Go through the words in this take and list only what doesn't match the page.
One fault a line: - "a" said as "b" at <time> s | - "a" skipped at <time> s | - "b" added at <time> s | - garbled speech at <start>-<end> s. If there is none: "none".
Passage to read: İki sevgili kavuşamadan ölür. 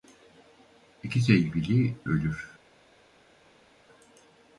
- "kavuşamadan" skipped at 1.9 s